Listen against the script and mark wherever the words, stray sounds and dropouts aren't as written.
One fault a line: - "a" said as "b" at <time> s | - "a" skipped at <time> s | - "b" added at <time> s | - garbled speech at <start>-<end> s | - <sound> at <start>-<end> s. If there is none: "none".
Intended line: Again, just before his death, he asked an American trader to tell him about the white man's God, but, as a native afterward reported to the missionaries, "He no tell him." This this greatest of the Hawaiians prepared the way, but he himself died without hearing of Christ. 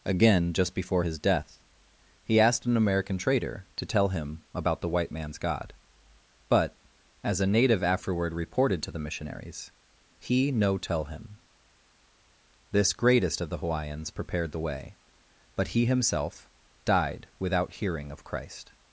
- "this" skipped at 12.9 s